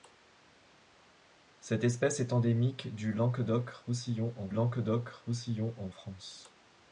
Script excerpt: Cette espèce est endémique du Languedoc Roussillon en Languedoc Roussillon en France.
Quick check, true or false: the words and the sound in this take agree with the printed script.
true